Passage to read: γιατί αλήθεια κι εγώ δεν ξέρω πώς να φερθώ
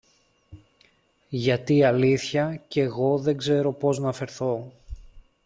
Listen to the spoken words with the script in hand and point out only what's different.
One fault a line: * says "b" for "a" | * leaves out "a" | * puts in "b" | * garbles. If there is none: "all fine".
all fine